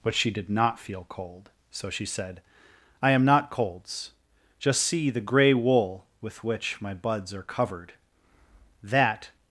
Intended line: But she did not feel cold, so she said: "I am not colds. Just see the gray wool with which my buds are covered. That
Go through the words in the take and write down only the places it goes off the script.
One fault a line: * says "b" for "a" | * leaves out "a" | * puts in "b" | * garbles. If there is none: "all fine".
all fine